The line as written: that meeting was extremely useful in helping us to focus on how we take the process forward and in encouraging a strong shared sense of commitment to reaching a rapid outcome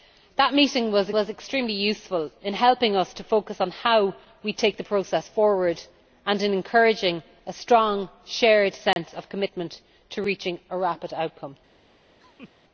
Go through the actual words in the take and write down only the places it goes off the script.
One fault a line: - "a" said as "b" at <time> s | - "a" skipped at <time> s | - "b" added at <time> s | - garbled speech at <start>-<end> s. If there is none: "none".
- "was" added at 1.1 s